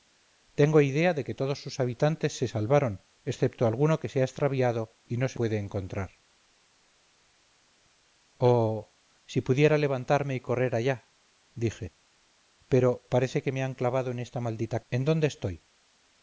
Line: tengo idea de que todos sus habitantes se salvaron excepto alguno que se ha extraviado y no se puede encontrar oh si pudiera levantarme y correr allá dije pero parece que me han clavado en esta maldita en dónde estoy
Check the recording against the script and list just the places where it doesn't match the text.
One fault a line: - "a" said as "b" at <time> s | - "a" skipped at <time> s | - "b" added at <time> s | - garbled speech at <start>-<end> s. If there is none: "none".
none